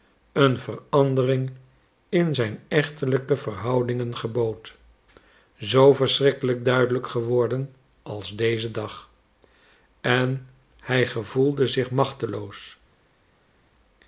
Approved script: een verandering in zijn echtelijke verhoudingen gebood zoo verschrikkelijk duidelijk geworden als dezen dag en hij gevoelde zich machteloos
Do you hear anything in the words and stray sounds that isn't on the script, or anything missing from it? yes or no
no